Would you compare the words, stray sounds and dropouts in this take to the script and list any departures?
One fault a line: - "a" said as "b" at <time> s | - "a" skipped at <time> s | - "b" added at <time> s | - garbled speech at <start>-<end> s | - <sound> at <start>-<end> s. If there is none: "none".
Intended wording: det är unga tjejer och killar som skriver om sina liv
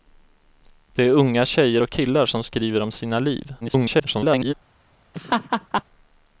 - garbled speech at 3.6-4.5 s
- laugh at 5.1-5.8 s